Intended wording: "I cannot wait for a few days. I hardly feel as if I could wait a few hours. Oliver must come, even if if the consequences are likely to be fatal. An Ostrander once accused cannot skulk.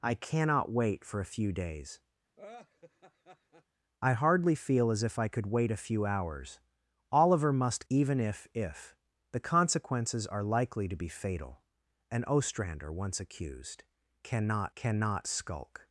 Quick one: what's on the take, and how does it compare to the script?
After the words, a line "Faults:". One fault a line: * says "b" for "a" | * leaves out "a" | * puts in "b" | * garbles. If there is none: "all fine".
"I cannot wait for a few days. I hardly feel as if I could wait a few hours. Oliver must even if if the consequences are likely to be fatal. An Ostrander once accused cannot cannot skulk.
Faults:
* leaves out "come"
* puts in "cannot"